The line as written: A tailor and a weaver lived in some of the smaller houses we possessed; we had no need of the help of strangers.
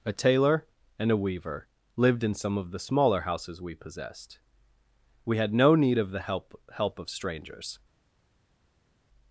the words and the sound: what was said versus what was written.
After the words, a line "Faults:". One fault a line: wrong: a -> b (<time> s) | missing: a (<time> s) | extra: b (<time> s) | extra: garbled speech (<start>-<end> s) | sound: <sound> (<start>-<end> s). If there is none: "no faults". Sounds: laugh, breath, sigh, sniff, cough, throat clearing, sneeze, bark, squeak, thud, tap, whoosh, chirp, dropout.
A tailor and a weaver lived in some of the smaller houses we possessed; we had no need of the help help of strangers.
Faults:
extra: help (6.7 s)